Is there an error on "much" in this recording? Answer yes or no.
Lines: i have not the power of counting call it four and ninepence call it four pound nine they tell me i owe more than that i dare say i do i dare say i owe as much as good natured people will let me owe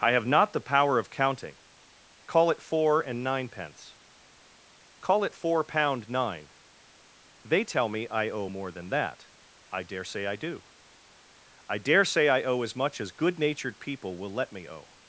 no